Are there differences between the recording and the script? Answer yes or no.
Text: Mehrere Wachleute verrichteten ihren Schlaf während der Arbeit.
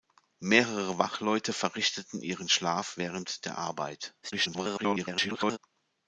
yes